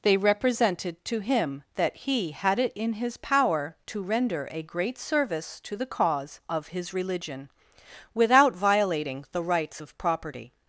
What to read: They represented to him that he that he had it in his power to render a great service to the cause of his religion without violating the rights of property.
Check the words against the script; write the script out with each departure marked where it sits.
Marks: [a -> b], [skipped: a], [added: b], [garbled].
They represented to him that he [skipped: that he] had it in his power to render a great service to the cause of his religion without violating the rights of property.